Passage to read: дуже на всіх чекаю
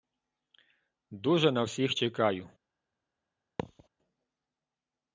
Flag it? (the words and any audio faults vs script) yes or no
yes